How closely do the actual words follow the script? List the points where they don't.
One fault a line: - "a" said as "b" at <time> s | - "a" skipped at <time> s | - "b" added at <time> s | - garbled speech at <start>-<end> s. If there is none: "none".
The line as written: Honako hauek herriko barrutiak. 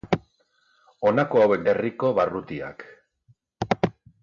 none